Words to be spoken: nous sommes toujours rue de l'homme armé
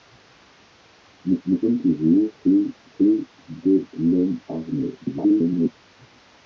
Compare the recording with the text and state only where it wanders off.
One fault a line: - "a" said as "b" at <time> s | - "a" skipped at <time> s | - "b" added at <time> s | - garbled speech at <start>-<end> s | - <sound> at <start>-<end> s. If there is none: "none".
- "nous" added at 1.5 s
- "rue" added at 3.0 s
- garbled speech at 5.0-5.7 s